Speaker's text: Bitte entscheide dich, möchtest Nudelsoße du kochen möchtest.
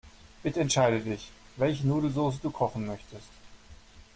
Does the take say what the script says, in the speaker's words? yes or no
no